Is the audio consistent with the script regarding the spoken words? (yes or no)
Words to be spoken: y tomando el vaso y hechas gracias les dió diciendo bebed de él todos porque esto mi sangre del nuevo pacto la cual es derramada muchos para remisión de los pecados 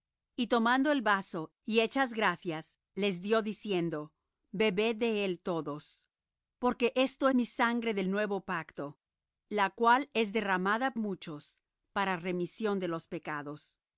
yes